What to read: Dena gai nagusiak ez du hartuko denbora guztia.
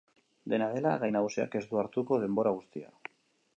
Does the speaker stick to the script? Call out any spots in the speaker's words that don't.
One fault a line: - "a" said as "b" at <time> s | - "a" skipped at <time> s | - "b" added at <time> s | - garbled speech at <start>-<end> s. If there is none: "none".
- "dela" added at 0.8 s